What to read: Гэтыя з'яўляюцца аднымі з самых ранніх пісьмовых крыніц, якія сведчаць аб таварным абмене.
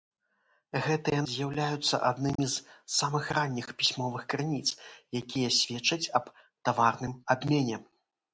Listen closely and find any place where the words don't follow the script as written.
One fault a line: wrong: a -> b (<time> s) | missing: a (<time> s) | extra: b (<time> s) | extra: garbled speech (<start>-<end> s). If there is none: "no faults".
no faults